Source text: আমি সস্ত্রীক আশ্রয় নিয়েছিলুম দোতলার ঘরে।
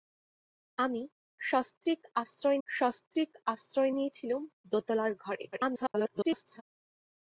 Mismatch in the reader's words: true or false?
true